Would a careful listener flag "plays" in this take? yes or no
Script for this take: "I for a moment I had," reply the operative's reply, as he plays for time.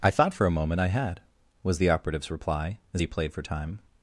yes